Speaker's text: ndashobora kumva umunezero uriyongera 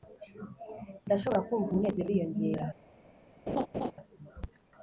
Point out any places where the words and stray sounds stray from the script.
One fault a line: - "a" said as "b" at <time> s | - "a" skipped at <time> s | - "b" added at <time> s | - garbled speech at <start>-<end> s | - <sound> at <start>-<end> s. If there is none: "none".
- laugh at 3.5-3.9 s